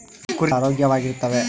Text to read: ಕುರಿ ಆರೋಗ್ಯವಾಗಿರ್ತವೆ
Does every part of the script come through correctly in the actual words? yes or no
yes